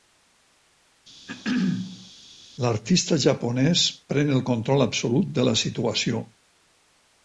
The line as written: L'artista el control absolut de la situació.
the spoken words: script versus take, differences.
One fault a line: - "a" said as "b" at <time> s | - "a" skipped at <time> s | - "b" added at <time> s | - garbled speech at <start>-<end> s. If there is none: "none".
- "japonès pren" added at 3.3 s